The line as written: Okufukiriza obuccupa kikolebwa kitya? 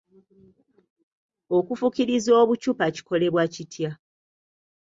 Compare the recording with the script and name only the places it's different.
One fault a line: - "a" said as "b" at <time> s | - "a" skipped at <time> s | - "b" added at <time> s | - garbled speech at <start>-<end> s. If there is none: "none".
none